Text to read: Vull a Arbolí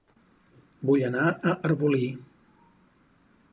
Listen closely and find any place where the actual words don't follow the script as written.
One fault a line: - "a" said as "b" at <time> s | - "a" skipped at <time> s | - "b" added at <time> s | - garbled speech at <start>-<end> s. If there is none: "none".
- "anar" added at 1.1 s